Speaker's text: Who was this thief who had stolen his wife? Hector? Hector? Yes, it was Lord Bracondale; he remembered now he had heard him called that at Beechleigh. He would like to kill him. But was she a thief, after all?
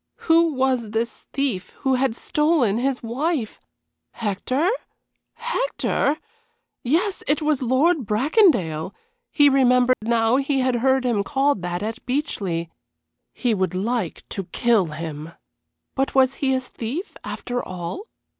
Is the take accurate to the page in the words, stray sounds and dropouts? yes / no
no